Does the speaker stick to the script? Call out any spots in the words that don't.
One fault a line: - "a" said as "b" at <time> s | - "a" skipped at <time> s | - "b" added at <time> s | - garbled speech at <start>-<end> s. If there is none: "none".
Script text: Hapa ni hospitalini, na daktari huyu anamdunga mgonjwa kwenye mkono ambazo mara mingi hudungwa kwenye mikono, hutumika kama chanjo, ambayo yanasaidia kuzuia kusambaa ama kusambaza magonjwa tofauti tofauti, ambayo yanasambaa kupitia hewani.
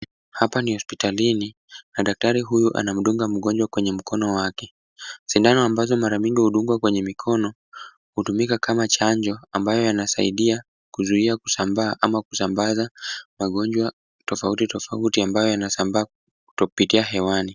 - "wake Sindano" added at 4.3 s